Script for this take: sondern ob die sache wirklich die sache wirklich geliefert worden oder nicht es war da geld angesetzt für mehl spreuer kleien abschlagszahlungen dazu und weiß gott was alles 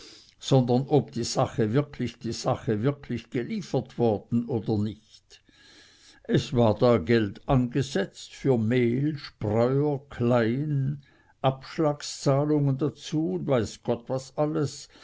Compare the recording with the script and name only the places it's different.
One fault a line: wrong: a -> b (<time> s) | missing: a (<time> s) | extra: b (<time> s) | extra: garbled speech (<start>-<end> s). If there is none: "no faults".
no faults